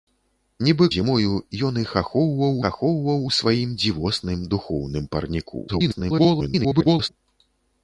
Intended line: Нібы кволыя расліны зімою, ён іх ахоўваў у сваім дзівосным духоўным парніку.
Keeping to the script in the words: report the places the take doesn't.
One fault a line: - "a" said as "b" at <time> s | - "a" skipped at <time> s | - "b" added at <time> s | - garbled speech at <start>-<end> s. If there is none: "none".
- "кволыя расліны" skipped at 0.8 s
- "ахоўваў" added at 2.7 s
- garbled speech at 5.7-7.1 s